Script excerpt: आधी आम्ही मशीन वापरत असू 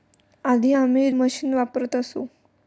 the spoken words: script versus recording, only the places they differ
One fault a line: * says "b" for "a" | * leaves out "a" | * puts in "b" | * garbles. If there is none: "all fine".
all fine